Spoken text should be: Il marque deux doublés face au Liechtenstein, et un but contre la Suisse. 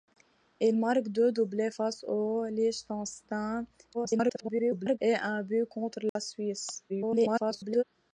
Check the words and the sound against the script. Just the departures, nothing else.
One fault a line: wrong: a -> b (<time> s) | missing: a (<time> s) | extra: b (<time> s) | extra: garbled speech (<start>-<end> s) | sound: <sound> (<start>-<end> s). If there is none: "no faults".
extra: garbled speech (3.9-5.0 s)
sound: dropout (6.1-6.2 s)
extra: garbled speech (6.9-7.8 s)